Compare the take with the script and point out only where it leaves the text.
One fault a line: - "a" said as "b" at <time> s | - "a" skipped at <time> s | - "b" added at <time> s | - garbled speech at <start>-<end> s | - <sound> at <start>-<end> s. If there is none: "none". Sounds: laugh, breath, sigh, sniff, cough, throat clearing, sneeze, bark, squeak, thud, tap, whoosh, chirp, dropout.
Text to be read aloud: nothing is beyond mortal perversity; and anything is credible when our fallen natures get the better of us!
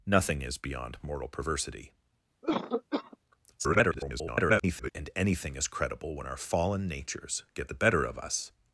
- cough at 2.4-3.2 s
- garbled speech at 3.6-4.9 s